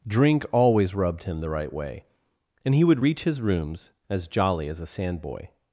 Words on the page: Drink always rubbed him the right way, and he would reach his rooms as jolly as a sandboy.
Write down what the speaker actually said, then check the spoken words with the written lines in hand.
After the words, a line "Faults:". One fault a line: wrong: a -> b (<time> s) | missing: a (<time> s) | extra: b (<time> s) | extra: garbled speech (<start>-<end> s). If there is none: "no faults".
Drink always rubbed him the right way, and he would reach his rooms as jolly as a sandboy.
Faults:
no faults